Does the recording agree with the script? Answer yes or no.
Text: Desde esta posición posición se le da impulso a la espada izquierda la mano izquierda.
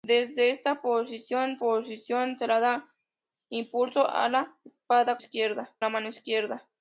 yes